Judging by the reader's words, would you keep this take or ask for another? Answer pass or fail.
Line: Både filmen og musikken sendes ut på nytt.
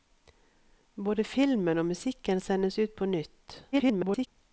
fail